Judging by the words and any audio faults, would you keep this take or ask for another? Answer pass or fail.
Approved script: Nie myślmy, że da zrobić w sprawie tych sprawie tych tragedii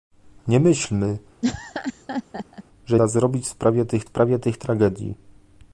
fail